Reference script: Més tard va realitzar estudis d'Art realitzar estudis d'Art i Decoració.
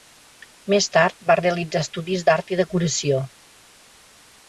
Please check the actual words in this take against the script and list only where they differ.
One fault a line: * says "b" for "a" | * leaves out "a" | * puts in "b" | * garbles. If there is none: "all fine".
* leaves out "realitzar estudis d'Art"